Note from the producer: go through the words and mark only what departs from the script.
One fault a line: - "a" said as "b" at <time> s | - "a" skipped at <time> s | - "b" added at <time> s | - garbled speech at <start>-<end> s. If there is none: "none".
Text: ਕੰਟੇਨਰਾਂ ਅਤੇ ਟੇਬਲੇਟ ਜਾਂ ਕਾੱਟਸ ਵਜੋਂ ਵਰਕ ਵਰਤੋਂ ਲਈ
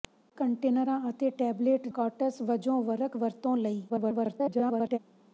- "ਜਾਂ" skipped at 1.9 s
- garbled speech at 3.9-5.0 s